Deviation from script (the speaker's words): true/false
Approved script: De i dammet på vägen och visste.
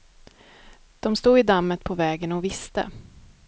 true